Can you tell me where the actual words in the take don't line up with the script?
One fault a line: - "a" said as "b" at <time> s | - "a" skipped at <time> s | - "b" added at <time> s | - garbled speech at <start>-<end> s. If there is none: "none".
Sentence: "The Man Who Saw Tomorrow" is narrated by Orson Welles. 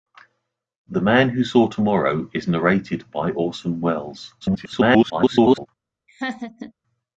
- garbled speech at 4.4-5.7 s